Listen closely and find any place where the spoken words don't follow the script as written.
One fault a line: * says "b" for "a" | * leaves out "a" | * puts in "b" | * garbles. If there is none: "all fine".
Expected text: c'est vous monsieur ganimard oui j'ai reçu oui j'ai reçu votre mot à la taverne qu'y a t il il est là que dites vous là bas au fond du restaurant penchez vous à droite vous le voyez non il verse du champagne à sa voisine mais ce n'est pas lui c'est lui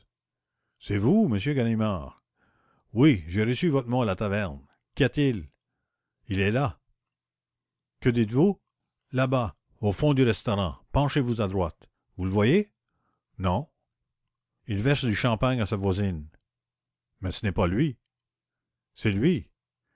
* leaves out "oui j'ai reçu"